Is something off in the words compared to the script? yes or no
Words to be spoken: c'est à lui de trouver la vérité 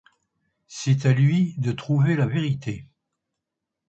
no